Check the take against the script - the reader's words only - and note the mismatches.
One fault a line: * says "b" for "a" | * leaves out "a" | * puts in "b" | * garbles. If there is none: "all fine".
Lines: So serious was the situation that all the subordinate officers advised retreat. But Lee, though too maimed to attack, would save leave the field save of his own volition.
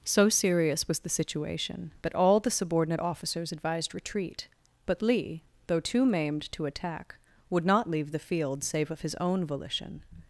* says "not" for "save"